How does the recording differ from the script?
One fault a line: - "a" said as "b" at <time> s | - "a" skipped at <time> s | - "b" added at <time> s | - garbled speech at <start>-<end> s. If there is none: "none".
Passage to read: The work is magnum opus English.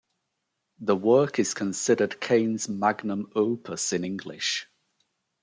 - "considered Kane's" added at 1.5 s
- "in" added at 3.9 s